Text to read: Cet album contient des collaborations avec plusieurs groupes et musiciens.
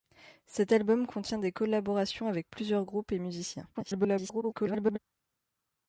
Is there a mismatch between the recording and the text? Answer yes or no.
yes